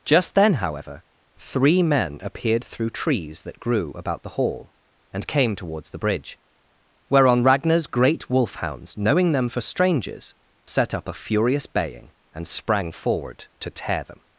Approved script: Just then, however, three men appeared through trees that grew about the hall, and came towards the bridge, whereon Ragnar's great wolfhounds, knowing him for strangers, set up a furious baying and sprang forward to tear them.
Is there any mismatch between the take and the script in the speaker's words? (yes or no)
yes